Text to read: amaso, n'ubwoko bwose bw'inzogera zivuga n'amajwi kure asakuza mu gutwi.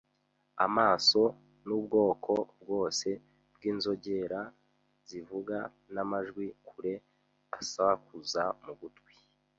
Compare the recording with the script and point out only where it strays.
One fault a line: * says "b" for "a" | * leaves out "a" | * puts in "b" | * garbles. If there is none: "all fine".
all fine